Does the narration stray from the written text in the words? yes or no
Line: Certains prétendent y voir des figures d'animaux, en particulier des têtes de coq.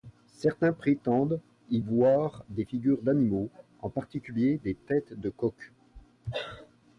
no